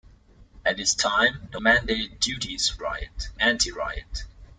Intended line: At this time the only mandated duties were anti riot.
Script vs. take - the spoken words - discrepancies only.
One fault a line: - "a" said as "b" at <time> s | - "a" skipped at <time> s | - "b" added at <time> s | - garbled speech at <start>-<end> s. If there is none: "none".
- "only" skipped at 1.6 s
- "were" said as "riot" at 2.8 s